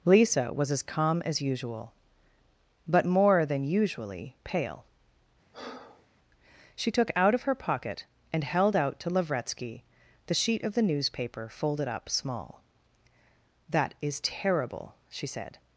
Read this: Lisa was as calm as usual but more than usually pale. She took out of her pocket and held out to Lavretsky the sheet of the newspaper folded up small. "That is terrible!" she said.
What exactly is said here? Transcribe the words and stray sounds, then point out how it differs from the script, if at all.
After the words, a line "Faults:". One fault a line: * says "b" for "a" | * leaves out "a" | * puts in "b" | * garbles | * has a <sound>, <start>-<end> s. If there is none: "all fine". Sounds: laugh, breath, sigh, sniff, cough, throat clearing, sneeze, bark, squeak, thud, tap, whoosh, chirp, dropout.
Lisa was as calm as usual but more than usually pale. She took out of her pocket and held out to Lavretsky the sheet of the newspaper folded up small. "That is terrible!" she said.
Faults:
* has a breath, 5.5-6.1 s